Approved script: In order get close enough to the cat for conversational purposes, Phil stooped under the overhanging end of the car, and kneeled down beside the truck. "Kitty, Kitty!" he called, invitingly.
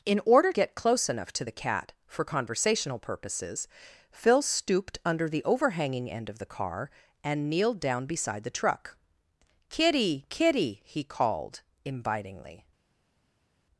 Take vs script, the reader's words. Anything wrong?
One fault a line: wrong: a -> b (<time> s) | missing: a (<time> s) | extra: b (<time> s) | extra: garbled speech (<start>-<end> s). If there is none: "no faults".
no faults